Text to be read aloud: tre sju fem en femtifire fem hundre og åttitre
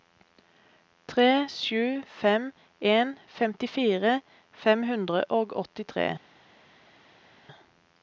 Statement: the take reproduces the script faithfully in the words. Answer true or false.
true